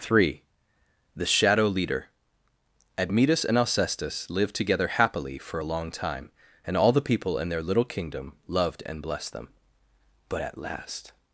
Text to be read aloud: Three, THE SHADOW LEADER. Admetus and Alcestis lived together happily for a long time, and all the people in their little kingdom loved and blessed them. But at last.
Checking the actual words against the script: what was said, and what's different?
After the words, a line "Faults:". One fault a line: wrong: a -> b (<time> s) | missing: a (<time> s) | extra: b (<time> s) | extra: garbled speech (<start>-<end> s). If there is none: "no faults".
Three, THE SHADOW LEADER. Admetus and Alcestis lived together happily for a long time, and all the people in their little kingdom loved and blessed them. But at last.
Faults:
no faults